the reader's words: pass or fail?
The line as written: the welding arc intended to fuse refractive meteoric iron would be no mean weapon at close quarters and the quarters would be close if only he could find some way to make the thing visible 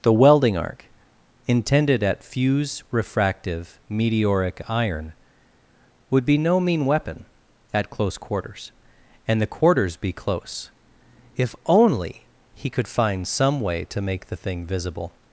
fail